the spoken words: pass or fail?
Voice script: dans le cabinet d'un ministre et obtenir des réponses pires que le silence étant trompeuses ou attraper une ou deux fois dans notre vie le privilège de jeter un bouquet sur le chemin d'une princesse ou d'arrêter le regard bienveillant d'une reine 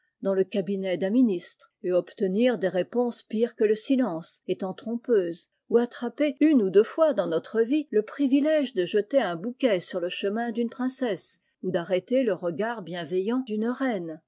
pass